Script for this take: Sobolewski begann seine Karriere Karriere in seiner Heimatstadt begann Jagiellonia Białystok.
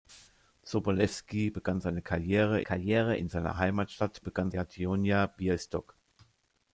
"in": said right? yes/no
yes